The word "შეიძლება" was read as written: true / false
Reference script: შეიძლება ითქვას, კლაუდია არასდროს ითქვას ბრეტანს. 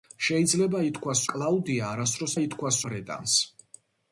true